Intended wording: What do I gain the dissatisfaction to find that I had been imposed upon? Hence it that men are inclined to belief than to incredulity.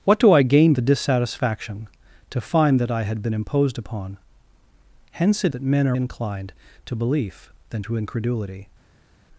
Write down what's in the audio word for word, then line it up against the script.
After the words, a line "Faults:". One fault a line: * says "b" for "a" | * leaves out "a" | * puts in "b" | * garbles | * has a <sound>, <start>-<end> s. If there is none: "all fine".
What do I gain the dissatisfaction to find that I had been imposed upon? Hence it that men are inclined to belief than to incredulity.
Faults:
all fine